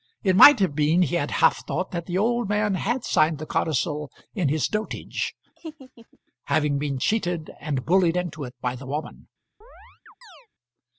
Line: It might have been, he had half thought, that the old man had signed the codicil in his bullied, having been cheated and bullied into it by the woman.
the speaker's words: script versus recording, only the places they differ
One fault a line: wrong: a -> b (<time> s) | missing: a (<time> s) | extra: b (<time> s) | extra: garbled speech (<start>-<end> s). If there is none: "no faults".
wrong: bullied -> dotage (4.7 s)